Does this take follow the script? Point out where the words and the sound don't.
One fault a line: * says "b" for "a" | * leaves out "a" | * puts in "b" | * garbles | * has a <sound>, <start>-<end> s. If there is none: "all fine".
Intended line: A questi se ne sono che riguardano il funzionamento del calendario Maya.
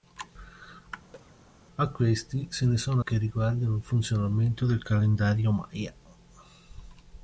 * has a cough, 1.1-1.4 s